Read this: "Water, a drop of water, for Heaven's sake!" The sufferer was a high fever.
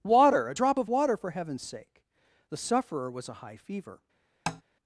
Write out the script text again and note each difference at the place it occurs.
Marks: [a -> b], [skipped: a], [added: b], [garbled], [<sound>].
"Water, a drop of water, for Heaven's sake!" The sufferer was a high fever. [tap]